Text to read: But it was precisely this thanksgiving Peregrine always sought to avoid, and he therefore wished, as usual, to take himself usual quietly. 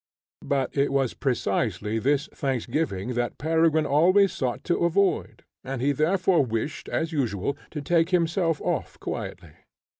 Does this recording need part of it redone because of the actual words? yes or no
yes